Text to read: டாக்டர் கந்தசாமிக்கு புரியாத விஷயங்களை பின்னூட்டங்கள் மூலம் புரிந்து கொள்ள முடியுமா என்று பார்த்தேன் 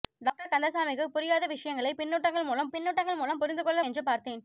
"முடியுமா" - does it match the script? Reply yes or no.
no